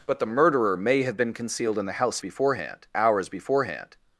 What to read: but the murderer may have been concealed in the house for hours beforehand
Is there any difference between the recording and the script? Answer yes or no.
yes